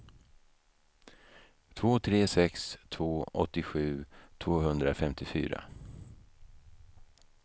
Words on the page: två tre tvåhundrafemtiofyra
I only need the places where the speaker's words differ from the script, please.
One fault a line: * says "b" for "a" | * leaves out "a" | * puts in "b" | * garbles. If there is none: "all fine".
* puts in "sex två åttiosju"